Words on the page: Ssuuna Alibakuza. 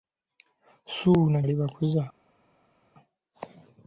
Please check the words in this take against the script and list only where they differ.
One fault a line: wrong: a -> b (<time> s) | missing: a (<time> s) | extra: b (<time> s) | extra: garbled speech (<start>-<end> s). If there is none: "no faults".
no faults